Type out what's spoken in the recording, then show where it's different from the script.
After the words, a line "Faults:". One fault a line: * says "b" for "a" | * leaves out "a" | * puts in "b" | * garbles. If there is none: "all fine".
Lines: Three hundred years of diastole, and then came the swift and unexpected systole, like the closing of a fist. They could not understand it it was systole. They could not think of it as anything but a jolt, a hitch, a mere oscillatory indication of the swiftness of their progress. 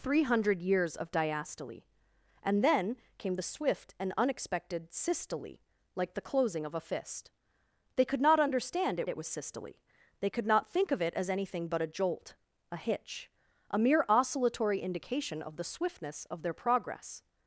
Three hundred years of diastole, and then came the swift and unexpected systole, like the closing of a fist. They could not understand it it was systole. They could not think of it as anything but a jolt, a hitch, a mere oscillatory indication of the swiftness of their progress.
Faults:
all fine